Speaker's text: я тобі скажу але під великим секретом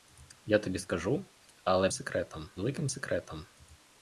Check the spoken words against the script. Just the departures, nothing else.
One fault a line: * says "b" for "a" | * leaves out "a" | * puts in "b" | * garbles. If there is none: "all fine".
* says "секретом" for "під"